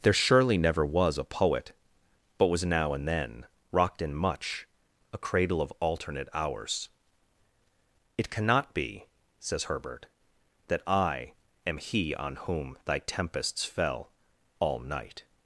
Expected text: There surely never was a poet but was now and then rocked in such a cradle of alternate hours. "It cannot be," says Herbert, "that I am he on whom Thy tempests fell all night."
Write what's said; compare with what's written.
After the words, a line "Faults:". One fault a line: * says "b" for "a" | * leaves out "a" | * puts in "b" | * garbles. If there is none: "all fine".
There surely never was a poet but was now and then rocked in much a cradle of alternate hours. "It cannot be," says Herbert, "that I am he on whom Thy tempests fell all night."
Faults:
* says "much" for "such"